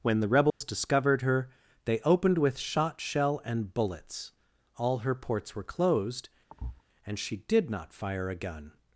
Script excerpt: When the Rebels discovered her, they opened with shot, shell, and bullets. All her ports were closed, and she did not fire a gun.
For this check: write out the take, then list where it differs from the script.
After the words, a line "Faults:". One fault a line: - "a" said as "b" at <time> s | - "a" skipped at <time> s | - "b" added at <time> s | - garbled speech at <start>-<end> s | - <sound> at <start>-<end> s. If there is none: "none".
When the Rebels discovered her, they opened with shot, shell, and bullets. All her ports were closed, and she did not fire a gun.
Faults:
- dropout at 0.5-0.6 s
- thud at 6.5-6.8 s